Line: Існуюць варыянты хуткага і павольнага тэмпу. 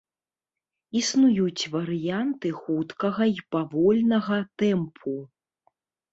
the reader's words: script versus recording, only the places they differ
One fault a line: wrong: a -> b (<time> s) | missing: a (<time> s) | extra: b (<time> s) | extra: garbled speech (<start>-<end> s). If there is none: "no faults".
no faults